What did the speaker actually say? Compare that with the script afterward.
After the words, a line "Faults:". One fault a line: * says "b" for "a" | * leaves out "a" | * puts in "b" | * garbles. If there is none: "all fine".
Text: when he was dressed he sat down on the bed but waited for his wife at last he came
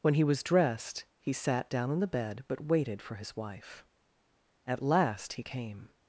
when he was dressed he sat down on the bed but waited for his wife at last he came
Faults:
all fine